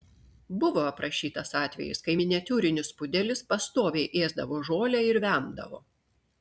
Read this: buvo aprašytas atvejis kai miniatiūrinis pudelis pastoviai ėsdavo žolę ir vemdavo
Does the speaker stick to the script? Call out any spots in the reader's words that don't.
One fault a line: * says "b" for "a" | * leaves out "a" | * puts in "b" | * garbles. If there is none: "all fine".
all fine